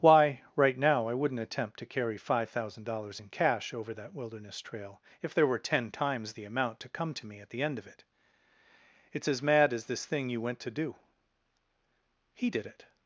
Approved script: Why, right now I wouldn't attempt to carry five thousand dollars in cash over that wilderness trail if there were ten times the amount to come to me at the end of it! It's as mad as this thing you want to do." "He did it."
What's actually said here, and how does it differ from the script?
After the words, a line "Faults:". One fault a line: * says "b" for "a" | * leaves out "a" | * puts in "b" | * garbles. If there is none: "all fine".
Why, right now I wouldn't attempt to carry five thousand dollars in cash over that wilderness trail if there were ten times the amount to come to me at the end of it! It's as mad as this thing you went to do." "He did it."
Faults:
* says "went" for "want"